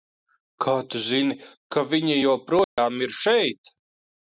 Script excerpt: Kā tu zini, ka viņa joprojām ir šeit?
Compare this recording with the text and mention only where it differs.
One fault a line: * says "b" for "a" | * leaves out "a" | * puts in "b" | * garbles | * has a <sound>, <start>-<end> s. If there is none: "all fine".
* has a dropout, 2.6-2.8 s